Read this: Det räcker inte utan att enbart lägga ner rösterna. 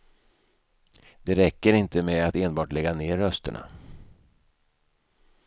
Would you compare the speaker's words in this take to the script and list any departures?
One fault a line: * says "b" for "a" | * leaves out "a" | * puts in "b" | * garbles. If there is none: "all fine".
* says "med" for "utan"